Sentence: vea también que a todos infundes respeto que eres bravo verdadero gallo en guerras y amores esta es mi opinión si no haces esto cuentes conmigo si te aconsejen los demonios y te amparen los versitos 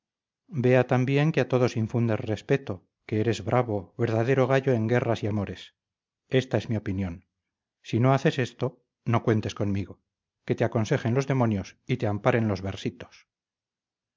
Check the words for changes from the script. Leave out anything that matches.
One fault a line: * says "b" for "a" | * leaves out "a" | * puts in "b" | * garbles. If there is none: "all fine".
* puts in "no"
* says "que" for "si"